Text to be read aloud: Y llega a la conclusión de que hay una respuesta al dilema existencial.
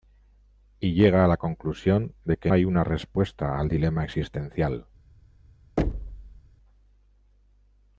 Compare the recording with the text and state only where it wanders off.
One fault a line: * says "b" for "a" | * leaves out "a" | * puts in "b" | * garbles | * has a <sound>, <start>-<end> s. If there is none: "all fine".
* has a thud, 5.8-6.4 s